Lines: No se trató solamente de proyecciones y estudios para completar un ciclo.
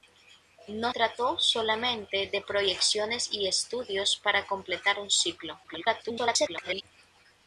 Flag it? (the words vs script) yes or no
yes